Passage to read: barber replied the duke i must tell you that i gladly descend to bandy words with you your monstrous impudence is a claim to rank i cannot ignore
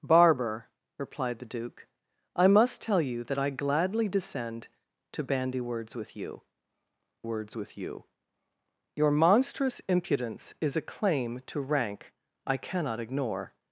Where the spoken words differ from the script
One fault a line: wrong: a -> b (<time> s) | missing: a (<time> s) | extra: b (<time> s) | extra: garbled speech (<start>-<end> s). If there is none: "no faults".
extra: words with you (7.2 s)